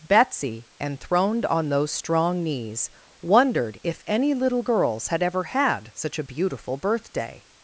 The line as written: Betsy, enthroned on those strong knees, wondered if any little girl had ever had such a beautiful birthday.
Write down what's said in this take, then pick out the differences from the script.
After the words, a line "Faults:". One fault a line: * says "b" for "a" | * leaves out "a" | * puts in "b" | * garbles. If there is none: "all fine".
Betsy, enthroned on those strong knees, wondered if any little girls had ever had such a beautiful birthday.
Faults:
* says "girls" for "girl"